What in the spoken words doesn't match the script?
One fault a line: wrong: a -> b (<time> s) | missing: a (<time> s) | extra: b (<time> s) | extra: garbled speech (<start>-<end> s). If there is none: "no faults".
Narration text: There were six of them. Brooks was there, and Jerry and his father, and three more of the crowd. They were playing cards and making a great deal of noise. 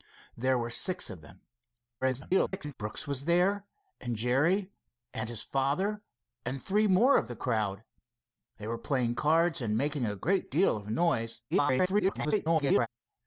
extra: garbled speech (2.0-2.7 s)
extra: garbled speech (11.5-12.9 s)